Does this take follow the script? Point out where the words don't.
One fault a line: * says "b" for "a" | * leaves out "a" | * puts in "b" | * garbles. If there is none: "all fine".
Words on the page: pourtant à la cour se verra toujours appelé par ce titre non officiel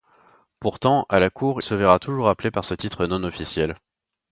all fine